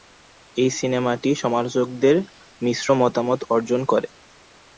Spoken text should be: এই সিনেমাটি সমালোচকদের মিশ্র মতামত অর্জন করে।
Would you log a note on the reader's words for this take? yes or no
no